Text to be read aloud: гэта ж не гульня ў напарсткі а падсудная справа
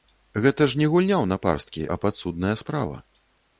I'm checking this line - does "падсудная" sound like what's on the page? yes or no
yes